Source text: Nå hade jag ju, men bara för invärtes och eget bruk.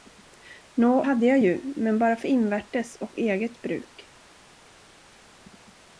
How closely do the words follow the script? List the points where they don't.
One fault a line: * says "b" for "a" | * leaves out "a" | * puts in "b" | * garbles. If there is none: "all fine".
all fine